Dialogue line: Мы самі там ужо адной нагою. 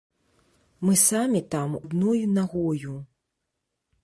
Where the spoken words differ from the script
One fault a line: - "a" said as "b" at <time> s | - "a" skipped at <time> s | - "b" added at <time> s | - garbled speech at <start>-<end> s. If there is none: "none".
- "ужо" skipped at 1.8 s